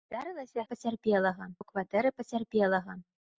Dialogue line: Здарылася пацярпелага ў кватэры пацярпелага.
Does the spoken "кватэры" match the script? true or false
true